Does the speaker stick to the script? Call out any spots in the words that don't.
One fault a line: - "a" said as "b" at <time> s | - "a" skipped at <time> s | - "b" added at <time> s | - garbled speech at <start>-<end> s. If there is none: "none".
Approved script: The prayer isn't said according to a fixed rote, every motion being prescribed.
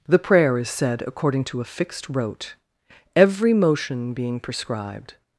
- "isn't" said as "is" at 0.6 s